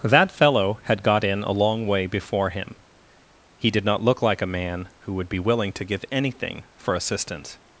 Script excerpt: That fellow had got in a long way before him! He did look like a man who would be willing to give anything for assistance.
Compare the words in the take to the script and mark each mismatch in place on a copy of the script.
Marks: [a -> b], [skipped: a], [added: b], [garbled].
That fellow had got in a long way before him! He did [added: not] look like a man who would be willing to give anything for assistance.